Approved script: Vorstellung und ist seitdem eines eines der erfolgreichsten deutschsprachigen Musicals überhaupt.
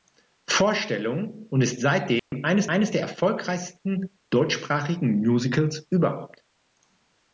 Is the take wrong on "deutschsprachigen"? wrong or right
right